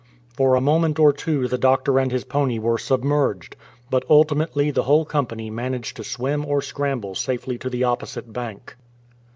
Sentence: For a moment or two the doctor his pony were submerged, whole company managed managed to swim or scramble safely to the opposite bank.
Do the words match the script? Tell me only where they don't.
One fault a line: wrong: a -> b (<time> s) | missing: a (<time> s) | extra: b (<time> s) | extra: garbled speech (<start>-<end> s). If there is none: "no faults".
extra: and (2.0 s)
extra: but ultimately the (3.9 s)
missing: managed (6.0 s)